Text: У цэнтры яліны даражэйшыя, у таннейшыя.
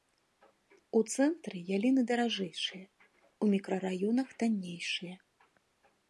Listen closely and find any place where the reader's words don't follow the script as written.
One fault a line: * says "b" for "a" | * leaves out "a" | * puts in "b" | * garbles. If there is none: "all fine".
* puts in "мікрараёнах"